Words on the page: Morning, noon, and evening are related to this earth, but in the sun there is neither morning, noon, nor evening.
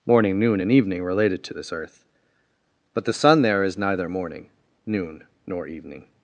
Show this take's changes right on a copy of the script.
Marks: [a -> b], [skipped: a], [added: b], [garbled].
Morning, noon, and evening [skipped: are] related to this earth, but [skipped: in] the sun there is neither morning, noon, nor evening.